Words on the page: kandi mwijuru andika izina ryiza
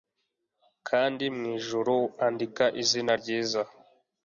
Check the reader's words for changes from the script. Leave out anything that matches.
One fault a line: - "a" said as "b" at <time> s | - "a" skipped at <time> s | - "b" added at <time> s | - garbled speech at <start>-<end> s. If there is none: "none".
none